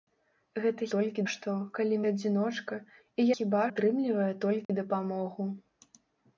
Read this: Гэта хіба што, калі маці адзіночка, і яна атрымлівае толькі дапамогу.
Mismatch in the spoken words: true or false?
true